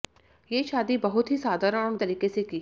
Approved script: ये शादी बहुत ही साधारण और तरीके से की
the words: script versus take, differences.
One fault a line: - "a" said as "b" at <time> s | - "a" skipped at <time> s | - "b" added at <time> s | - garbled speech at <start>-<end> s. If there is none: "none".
none